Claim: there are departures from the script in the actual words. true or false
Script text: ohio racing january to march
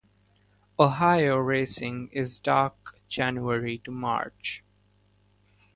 true